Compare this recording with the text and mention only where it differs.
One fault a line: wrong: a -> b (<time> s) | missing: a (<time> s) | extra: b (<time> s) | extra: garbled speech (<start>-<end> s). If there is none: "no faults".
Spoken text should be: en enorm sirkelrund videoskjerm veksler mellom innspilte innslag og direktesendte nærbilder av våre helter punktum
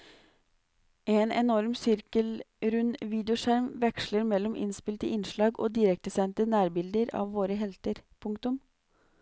no faults